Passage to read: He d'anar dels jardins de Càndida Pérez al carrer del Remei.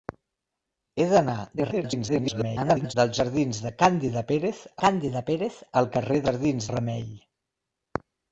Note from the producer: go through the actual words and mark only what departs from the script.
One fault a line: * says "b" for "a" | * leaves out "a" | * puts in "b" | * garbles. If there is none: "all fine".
* garbles
* puts in "Càndida Pérez"
* says "jardins" for "del"